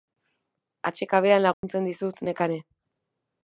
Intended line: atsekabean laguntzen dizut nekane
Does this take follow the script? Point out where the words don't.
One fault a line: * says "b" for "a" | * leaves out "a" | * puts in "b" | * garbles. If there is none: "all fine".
all fine